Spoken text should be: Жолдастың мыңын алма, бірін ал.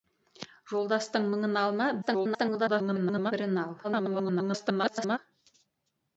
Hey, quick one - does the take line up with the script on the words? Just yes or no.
no